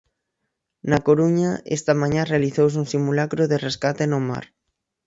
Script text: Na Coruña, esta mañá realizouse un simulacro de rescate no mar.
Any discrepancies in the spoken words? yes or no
no